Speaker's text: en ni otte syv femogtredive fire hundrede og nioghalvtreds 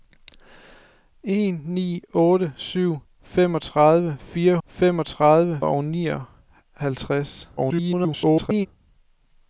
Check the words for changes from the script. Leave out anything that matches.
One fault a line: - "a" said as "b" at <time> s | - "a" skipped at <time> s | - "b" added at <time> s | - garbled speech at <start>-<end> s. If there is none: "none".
- "hundrede" said as "femogtredive" at 4.7 s
- garbled speech at 7.6-8.7 s